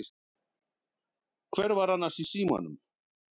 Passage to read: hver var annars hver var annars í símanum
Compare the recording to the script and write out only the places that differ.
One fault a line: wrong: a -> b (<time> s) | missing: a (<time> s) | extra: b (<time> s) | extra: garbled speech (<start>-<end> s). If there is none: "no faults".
missing: hver var annars (2.2 s)